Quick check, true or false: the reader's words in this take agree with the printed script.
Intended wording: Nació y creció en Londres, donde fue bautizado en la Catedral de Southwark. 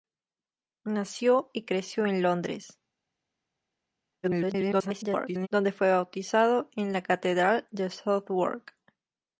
false